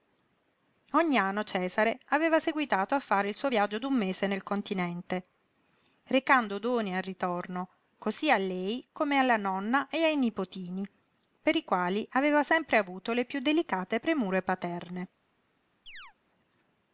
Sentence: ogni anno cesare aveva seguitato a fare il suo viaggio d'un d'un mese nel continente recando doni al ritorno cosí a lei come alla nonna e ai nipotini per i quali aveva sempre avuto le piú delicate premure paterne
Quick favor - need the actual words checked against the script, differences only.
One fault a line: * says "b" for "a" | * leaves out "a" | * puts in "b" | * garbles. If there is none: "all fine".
* leaves out "d'un"